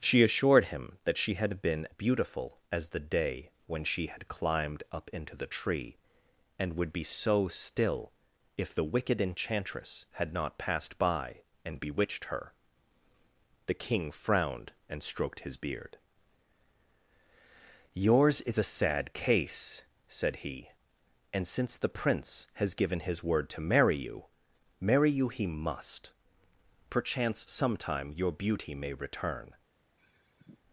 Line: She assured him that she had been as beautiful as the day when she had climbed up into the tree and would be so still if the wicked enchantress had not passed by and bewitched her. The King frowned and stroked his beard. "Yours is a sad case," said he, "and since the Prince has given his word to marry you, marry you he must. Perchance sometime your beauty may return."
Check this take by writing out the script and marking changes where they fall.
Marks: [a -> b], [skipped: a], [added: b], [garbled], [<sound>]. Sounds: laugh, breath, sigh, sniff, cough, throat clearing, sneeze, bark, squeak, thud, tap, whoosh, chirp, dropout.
She assured him that she had been [skipped: as] beautiful as the day when she had climbed up into the tree and would be so still if the wicked enchantress had not passed by and bewitched her. The King frowned and stroked his beard. "Yours is a sad case," said he, "and since the Prince has given his word to marry you, marry you he must. Perchance sometime your beauty may return." [sigh]